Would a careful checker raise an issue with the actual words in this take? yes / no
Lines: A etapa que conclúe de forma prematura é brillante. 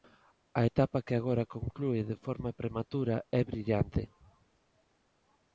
yes